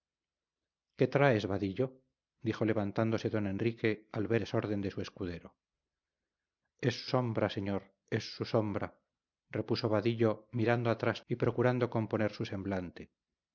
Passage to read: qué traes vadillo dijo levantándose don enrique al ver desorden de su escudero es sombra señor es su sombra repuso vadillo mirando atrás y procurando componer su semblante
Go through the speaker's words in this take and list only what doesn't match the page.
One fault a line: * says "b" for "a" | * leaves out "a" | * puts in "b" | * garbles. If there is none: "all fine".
all fine